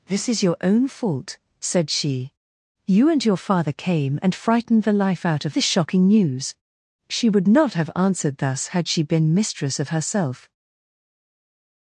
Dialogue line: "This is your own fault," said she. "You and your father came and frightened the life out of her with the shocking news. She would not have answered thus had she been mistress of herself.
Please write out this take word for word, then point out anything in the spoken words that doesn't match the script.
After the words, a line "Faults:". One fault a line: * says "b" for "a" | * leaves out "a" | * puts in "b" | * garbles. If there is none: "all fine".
"This is your own fault," said she. "You and your father came and frightened the life out of the shocking news. She would not have answered thus had she been mistress of herself.
Faults:
* leaves out "her with"